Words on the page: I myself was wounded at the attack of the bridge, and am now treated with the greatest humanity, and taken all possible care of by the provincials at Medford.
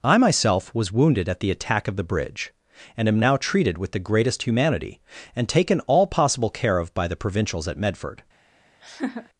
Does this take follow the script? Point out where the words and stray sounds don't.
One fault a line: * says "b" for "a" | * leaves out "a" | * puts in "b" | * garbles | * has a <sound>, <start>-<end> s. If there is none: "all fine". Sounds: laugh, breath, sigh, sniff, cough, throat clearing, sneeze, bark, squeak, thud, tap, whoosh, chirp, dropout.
* has a laugh, 8.8-9.3 s